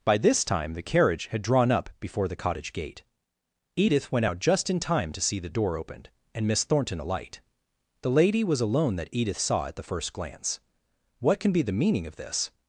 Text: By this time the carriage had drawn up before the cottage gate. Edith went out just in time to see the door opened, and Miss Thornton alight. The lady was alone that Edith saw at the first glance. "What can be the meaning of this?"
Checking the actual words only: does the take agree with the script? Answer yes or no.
yes